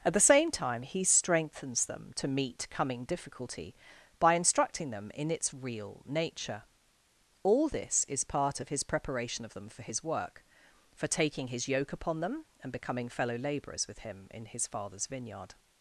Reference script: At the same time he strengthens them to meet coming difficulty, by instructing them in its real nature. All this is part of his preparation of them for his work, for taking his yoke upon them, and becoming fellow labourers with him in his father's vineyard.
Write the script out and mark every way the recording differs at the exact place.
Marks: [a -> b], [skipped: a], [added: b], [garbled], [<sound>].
At the same time he strengthens them to meet coming difficulty, by instructing them in its real nature. All this is part of his preparation of them for his work, for taking his yoke upon them, and becoming fellow labourers with him in his father's vineyard.